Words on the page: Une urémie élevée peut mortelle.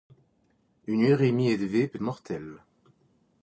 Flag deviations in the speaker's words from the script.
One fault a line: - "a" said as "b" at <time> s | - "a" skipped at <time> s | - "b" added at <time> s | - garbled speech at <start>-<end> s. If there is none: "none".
none